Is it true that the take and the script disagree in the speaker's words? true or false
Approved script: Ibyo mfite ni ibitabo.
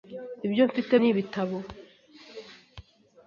false